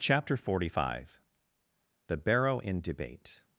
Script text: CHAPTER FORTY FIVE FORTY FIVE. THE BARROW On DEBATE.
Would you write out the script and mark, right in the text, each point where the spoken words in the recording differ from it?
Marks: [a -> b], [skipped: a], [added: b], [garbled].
CHAPTER FORTY FIVE [skipped: FORTY FIVE.] THE BARROW [On -> IN] DEBATE.